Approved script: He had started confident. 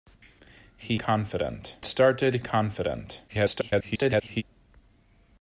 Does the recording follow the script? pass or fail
fail